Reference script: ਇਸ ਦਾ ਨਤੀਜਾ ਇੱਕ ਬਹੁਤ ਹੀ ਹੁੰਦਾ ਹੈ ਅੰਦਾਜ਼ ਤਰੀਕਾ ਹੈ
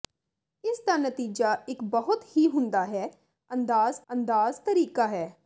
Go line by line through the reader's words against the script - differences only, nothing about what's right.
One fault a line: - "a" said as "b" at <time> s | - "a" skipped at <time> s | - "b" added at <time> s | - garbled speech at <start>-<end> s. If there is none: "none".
- "ਅੰਦਾਜ਼" added at 4.1 s